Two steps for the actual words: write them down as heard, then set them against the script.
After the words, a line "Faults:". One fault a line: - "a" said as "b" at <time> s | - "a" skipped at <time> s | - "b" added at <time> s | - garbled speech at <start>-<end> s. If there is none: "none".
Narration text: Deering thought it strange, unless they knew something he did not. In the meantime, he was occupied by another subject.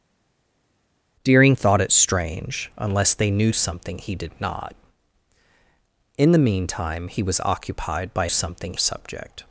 Deering thought it strange, unless they knew something he did not. In the meantime, he was occupied by something subject.
Faults:
- "another" said as "something" at 8.3 s